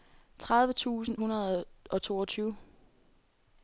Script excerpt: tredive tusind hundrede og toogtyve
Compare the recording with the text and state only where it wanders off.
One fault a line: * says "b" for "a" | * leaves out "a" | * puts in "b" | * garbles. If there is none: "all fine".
all fine